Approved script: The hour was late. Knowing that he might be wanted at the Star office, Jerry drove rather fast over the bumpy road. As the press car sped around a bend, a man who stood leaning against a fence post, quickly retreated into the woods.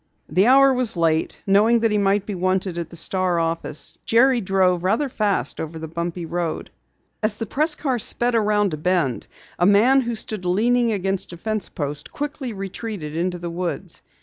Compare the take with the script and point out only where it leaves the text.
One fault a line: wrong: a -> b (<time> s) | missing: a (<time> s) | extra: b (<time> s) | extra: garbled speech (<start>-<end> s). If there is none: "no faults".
no faults